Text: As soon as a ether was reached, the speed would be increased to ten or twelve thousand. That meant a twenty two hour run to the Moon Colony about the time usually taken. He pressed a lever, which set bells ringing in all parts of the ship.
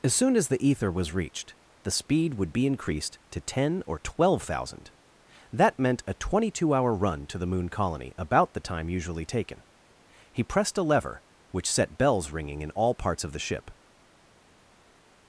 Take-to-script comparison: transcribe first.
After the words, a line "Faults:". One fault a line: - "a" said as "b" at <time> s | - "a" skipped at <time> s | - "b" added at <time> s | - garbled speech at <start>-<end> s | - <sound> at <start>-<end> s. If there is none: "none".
As soon as the ether was reached, the speed would be increased to ten or twelve thousand. That meant a twenty two hour run to the Moon Colony about the time usually taken. He pressed a lever, which set bells ringing in all parts of the ship.
Faults:
- "a" said as "the" at 0.5 s